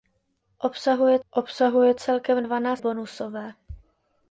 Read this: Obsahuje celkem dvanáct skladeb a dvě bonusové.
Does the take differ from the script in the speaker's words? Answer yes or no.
yes